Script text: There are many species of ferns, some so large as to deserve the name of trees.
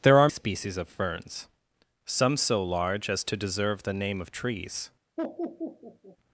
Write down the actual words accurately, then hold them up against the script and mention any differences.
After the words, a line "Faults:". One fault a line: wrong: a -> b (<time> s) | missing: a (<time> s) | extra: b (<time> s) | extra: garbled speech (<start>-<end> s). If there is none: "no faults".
There are species of ferns, some so large as to deserve the name of trees.
Faults:
missing: many (0.3 s)